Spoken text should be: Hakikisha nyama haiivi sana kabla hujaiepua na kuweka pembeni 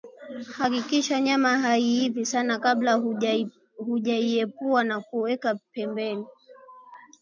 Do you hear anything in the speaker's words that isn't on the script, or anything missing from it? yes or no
no